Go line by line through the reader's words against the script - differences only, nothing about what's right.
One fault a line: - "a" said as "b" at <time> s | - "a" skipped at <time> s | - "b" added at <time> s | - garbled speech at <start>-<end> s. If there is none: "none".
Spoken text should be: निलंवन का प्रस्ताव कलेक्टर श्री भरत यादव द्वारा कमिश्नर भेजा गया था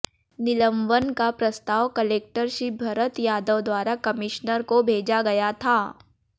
- "को" added at 4.6 s